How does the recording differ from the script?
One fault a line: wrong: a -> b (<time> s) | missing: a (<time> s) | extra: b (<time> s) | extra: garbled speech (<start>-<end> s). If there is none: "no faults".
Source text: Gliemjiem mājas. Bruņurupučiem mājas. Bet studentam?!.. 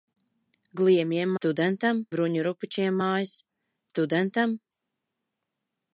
wrong: mājas -> studentam (1.3 s)
missing: Bet (3.4 s)